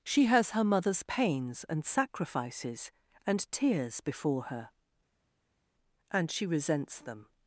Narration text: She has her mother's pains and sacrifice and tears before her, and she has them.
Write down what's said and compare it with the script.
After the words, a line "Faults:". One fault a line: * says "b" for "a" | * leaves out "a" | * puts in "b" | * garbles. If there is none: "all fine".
She has her mother's pains and sacrifices and tears before her, and she resents them.
Faults:
* says "sacrifices" for "sacrifice"
* says "resents" for "has"